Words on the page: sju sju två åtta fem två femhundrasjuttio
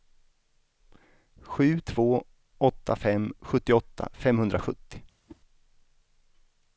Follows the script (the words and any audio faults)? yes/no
no